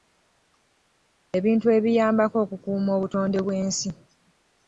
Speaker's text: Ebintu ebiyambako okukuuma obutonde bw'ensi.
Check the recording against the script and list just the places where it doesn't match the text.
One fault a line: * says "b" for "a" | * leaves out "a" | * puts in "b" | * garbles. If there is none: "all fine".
all fine